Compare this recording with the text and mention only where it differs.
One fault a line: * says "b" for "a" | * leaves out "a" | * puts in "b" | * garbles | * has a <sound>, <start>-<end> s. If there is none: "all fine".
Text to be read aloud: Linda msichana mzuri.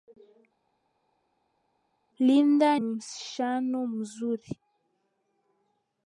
all fine